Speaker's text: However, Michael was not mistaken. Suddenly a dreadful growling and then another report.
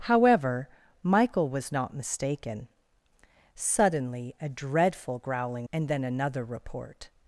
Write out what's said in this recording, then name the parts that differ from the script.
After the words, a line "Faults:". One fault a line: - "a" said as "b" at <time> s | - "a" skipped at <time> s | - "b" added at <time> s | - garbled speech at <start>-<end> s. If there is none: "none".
However, Michael was not mistaken. Suddenly a dreadful growling and then another report.
Faults:
none